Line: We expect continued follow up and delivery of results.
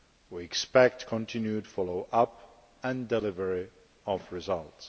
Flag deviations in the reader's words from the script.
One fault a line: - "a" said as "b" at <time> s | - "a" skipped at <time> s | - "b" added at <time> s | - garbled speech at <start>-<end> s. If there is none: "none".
none